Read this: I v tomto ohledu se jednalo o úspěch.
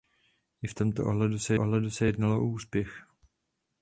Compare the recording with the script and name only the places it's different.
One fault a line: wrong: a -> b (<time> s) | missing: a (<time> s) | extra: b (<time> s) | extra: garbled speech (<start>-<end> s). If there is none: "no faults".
extra: ohledu se (1.6 s)